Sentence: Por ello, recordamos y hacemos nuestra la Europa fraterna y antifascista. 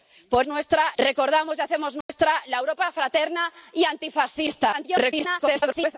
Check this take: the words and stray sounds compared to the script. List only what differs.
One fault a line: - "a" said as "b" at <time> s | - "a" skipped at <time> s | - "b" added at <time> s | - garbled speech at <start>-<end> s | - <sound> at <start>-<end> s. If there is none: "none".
- "ello" said as "nuestra" at 0.5 s
- dropout at 2.0-2.1 s
- garbled speech at 4.7-6.0 s